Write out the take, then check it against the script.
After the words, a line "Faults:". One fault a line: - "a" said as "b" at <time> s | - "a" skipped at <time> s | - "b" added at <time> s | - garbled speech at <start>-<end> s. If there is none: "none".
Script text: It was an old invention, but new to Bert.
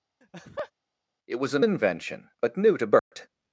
It was an invention, but new to Bert.
Faults:
- "old" skipped at 1.7 s